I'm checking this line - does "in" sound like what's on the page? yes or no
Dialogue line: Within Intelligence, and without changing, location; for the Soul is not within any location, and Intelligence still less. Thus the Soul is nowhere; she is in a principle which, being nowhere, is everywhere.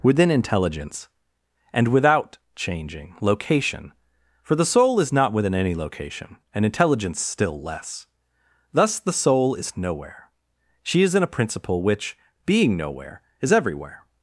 yes